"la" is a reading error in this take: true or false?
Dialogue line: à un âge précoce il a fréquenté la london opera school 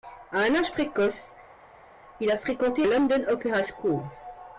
true